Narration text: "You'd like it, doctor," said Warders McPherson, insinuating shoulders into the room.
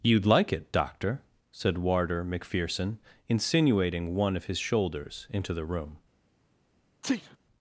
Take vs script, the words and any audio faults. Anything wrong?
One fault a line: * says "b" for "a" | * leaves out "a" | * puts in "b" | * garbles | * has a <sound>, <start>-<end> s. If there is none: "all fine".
* says "Warder" for "Warders"
* puts in "one of his"
* has a sneeze, 7.0-7.4 s